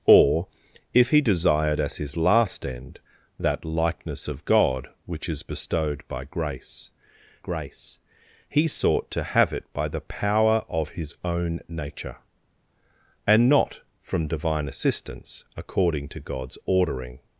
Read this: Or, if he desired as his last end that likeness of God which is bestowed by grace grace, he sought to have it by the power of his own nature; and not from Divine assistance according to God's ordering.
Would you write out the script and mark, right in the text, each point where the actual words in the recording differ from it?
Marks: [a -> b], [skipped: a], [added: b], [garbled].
Or, if he desired as his last end that likeness of God which is bestowed by grace grace, he sought to have it by the power of his own nature; and not from Divine assistance according to God's ordering.